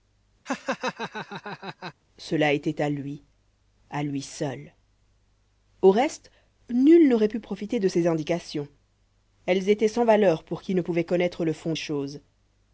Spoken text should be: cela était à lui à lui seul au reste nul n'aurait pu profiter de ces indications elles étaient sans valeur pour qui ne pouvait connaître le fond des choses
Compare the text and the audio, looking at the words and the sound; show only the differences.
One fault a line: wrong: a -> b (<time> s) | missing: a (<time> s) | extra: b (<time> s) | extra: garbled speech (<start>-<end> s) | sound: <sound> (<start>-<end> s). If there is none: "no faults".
sound: laugh (0.5-1.9 s)
missing: des (11.7 s)